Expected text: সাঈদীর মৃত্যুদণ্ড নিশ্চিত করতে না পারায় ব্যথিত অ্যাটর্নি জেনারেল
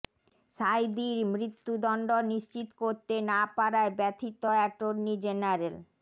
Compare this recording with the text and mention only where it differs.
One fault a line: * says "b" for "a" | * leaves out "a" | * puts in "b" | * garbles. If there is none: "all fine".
all fine